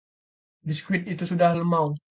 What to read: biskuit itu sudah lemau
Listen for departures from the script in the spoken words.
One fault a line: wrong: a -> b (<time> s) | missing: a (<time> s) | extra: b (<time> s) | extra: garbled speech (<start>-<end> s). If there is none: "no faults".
no faults